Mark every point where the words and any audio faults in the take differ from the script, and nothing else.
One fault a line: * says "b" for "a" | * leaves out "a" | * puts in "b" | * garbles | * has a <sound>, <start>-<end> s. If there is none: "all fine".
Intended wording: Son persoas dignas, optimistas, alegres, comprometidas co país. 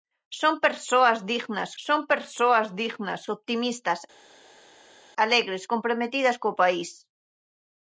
* puts in "son persoas dignas"